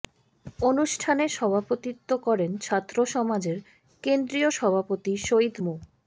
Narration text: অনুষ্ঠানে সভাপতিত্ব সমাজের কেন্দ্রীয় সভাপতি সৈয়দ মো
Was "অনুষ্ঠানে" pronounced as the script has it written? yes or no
yes